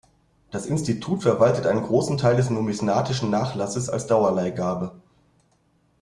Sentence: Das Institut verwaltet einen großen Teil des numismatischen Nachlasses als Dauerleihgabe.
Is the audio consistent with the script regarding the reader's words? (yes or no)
yes